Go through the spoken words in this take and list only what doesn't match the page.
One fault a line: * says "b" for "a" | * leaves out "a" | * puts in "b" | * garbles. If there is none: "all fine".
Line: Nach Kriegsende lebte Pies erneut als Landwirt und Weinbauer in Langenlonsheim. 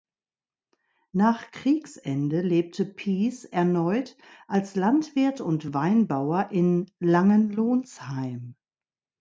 all fine